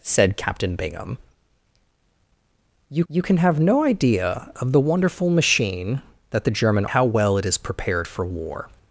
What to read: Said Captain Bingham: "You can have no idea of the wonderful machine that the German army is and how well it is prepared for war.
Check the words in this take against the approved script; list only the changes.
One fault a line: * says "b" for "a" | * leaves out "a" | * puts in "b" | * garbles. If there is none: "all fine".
* puts in "you"
* leaves out "army is and"